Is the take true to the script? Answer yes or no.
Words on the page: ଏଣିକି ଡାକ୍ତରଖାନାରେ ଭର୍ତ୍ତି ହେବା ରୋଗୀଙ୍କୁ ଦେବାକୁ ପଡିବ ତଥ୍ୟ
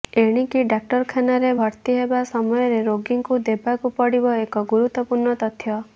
no